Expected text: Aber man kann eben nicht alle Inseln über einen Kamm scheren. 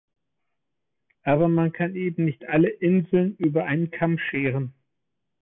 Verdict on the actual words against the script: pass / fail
pass